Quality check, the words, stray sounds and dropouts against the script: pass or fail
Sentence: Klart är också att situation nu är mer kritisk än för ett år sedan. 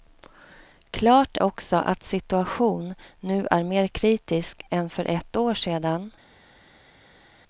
fail